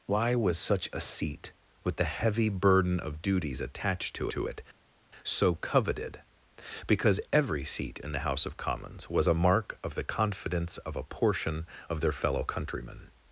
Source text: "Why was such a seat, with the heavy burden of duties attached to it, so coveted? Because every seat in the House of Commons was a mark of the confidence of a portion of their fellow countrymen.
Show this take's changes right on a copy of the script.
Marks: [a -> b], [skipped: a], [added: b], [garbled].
"Why was such a seat, with the heavy burden of duties attached to [added: to] it, so coveted? Because every seat in the House of Commons was a mark of the confidence of a portion of their fellow countrymen.